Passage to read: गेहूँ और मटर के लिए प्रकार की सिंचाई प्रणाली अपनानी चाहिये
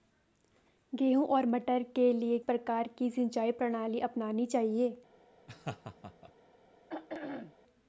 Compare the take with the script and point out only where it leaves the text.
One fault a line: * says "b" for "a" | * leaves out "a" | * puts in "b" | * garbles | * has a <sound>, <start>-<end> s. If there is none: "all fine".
* has a laugh, 5.5-6.3 s
* has a throat clearing, 6.9-7.6 s